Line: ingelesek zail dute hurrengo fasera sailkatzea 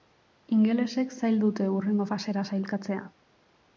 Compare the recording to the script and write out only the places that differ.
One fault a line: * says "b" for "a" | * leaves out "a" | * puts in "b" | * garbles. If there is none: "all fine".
all fine